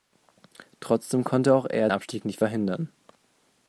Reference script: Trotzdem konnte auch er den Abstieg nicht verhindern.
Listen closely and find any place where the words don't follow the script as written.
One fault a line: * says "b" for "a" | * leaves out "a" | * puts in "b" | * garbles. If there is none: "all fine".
* leaves out "den"